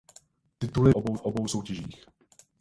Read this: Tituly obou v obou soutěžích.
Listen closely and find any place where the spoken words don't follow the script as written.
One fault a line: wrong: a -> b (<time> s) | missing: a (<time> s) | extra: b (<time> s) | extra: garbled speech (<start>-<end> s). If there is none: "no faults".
no faults